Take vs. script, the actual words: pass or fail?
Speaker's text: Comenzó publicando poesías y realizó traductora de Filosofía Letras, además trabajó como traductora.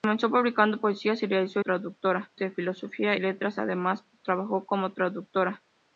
pass